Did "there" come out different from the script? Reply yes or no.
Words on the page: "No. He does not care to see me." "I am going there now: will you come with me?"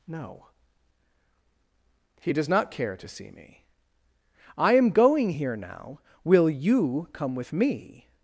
yes